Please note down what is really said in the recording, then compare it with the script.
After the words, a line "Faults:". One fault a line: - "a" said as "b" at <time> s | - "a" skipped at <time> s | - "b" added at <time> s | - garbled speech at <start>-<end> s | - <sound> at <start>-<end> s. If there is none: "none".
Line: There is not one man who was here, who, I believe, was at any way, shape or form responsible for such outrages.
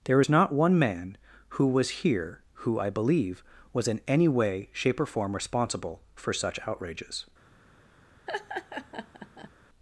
There is not one man who was here, who, I believe, was in any way, shape or form responsible for such outrages.
Faults:
- "at" said as "in" at 3.9 s
- laugh at 8.3-9.5 s